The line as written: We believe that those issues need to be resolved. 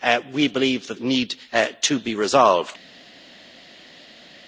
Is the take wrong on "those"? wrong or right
wrong